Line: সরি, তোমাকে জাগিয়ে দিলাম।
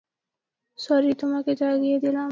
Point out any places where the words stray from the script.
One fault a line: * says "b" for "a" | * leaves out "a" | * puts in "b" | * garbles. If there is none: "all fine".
all fine